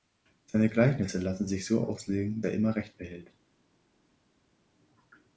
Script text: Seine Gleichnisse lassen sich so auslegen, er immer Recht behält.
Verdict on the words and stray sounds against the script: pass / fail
pass